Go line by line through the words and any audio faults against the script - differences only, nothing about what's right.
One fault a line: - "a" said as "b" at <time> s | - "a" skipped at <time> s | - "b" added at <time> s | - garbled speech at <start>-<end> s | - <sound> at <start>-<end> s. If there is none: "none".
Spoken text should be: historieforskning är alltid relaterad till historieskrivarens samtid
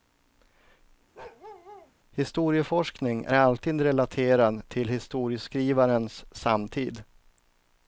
- bark at 1.1-1.9 s